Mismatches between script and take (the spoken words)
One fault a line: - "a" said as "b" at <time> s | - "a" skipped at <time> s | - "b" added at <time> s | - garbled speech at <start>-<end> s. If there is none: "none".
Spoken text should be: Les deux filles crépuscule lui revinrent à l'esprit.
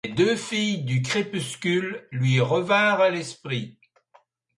- "du" added at 0.8 s